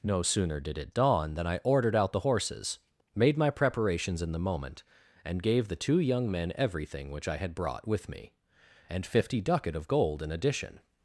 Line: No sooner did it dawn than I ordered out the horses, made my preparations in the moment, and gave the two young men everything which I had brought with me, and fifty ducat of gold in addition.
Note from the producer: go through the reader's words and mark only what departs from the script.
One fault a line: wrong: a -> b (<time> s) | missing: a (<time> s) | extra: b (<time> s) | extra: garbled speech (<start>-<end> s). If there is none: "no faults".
no faults